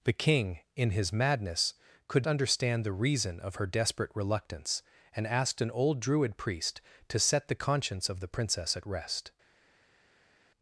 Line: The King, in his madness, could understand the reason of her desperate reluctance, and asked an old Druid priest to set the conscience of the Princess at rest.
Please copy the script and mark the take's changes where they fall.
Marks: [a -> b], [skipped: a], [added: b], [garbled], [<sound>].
The King, in his madness, could understand the reason of her desperate reluctance, and asked an old Druid priest to set the conscience of the Princess at rest.